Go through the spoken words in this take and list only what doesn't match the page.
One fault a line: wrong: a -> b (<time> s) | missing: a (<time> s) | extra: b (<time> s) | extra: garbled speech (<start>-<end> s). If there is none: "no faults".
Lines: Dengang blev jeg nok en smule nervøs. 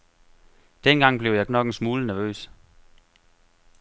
no faults